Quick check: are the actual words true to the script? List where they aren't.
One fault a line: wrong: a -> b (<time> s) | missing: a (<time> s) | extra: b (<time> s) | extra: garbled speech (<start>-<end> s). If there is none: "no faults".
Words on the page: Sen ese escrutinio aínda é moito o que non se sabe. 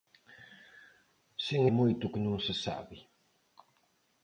missing: ese escrutinio aínda (1.6 s)